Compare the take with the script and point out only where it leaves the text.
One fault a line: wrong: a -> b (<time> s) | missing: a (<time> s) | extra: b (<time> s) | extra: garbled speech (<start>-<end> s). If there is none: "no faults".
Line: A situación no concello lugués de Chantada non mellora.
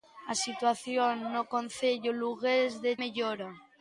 missing: Chantada non (2.9 s)